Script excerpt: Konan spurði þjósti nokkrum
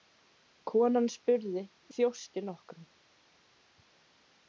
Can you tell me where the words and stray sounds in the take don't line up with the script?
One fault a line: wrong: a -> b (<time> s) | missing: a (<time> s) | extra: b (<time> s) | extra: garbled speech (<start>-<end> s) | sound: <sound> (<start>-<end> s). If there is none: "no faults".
no faults